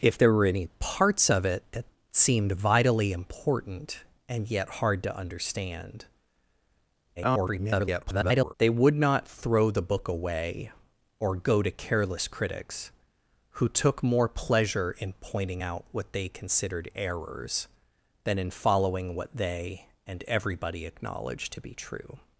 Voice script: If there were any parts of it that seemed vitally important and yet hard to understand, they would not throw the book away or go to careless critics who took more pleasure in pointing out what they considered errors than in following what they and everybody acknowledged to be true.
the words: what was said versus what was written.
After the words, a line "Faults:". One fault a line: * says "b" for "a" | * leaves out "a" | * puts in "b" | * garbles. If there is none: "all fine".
If there were any parts of it that seemed vitally important and yet hard to understand, [garbled] they would not throw the book away or go to careless critics who took more pleasure in pointing out what they considered errors than in following what they and everybody acknowledged to be true.
Faults:
* garbles